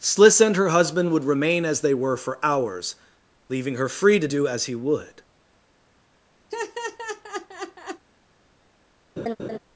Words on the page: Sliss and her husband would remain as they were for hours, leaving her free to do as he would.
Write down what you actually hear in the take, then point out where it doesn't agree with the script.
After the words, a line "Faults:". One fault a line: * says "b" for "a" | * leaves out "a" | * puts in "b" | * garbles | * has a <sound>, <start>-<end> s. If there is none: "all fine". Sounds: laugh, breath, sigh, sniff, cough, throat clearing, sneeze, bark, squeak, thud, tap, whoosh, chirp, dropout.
Sliss and her husband would remain as they were for hours, leaving her free to do as he would.
Faults:
* has a laugh, 6.5-8.0 s
* has a laugh, 9.2-9.6 s